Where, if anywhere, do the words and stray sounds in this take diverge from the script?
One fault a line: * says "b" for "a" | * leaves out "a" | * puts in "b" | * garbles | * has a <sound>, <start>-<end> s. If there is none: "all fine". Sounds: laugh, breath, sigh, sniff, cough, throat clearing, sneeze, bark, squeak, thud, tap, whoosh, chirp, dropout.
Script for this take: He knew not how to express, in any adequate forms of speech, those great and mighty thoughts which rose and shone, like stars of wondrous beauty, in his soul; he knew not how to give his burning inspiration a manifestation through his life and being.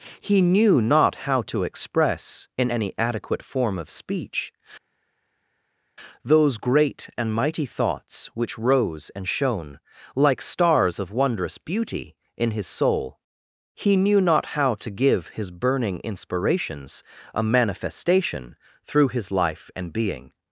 * says "form" for "forms"
* says "inspirations" for "inspiration"